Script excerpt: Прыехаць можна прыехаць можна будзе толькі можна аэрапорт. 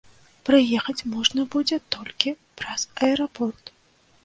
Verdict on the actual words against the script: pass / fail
fail